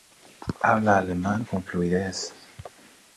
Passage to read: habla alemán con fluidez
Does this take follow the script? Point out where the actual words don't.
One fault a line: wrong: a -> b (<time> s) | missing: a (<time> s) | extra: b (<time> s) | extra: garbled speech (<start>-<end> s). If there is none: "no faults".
no faults